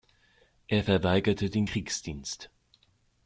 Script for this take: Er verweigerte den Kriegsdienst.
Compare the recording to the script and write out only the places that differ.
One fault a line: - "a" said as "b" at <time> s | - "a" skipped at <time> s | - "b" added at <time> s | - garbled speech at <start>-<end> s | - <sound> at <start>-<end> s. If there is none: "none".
none